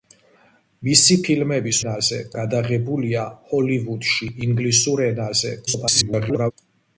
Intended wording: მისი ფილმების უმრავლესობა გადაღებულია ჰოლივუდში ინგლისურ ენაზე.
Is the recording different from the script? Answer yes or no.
yes